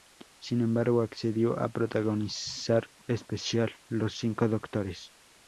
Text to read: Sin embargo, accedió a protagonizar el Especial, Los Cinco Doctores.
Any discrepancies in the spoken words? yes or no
yes